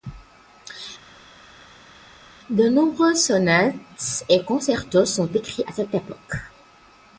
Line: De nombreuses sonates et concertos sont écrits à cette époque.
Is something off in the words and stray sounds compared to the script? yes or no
no